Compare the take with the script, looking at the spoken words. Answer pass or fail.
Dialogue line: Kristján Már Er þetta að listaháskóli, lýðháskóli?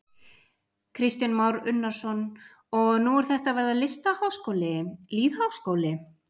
fail